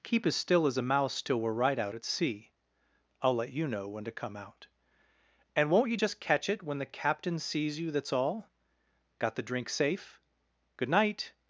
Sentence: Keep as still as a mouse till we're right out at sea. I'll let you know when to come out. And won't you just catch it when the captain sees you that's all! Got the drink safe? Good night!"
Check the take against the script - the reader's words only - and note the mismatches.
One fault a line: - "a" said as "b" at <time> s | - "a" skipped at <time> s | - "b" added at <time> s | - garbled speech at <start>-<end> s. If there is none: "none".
none